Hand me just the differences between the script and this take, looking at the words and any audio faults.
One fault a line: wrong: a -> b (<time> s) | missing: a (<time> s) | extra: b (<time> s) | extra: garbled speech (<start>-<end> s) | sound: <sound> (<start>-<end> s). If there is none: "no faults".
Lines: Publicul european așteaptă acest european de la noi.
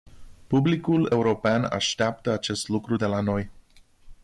wrong: european -> lucru (2.7 s)